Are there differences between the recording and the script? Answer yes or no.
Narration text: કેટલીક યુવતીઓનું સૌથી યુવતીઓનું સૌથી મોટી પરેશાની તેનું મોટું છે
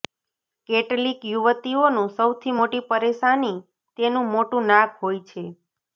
yes